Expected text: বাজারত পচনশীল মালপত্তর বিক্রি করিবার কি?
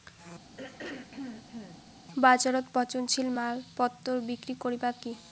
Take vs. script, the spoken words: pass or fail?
pass